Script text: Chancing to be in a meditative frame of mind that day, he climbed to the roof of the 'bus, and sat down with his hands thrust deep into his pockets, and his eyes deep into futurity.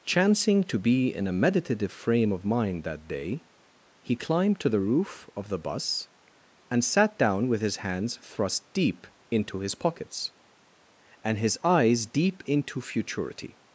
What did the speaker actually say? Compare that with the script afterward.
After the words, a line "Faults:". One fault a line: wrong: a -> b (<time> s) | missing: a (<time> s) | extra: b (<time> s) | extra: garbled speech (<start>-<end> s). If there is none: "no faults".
Chancing to be in a meditative frame of mind that day, he climbed to the roof of the 'bus, and sat down with his hands thrust deep into his pockets, and his eyes deep into futurity.
Faults:
no faults